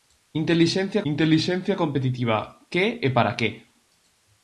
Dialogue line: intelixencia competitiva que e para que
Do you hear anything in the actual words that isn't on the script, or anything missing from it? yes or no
yes